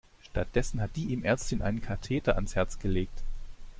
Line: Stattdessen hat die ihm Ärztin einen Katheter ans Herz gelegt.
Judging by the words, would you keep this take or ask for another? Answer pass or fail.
pass